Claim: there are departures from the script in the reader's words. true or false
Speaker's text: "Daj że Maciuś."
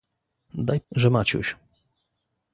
false